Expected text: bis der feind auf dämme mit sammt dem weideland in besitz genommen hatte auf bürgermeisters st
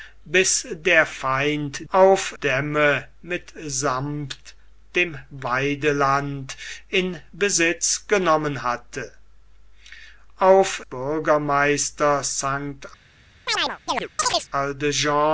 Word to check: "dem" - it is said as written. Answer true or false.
true